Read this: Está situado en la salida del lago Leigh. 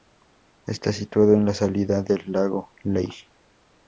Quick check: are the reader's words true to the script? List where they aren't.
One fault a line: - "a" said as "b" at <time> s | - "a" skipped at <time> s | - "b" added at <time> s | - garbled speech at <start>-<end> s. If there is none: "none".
none